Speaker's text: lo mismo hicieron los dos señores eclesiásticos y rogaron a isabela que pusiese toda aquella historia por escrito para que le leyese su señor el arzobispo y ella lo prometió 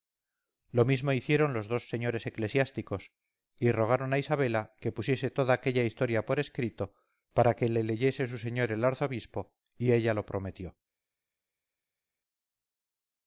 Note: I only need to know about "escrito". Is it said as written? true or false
true